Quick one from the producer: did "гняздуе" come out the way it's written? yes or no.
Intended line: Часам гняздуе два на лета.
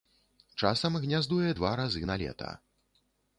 yes